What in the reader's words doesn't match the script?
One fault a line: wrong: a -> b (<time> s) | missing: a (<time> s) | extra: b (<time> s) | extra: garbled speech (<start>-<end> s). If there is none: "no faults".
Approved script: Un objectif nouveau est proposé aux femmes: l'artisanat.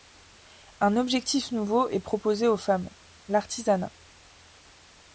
no faults